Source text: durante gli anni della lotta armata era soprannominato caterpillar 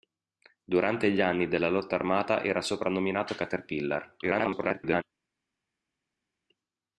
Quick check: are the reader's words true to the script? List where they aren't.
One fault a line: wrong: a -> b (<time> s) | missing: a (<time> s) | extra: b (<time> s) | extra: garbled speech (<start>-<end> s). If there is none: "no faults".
extra: garbled speech (4.2-5.0 s)